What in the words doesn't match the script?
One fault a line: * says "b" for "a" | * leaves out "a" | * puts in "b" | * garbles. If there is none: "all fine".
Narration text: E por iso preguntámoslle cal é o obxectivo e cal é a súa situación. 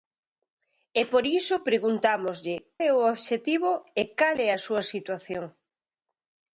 * leaves out "cal"